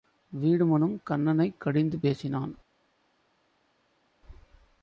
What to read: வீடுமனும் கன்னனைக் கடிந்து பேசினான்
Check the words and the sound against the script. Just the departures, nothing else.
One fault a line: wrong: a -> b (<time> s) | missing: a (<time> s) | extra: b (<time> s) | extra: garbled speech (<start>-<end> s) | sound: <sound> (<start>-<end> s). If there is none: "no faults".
no faults